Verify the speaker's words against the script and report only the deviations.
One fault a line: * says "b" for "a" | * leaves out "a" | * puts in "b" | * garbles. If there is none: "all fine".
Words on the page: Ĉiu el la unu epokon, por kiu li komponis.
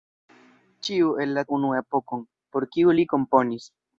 all fine